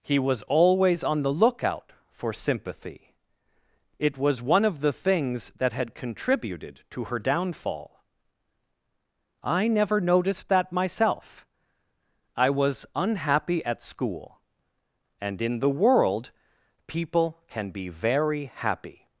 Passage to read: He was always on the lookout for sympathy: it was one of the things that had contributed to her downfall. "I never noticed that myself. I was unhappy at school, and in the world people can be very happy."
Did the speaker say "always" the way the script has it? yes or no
yes